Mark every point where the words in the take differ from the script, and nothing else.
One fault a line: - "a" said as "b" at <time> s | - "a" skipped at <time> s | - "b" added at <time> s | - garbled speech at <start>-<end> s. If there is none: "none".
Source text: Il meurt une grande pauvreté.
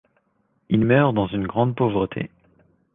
- "dans" added at 1.1 s